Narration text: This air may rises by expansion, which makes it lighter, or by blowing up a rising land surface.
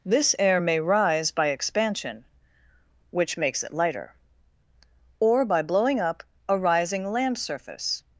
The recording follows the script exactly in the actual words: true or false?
false